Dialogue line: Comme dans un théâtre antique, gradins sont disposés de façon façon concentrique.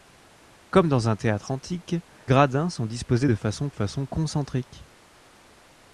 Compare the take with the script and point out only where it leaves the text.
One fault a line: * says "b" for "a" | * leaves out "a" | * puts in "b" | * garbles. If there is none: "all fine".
all fine